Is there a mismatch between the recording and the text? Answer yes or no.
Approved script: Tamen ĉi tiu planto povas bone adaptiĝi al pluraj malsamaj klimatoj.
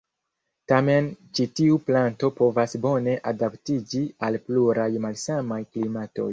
no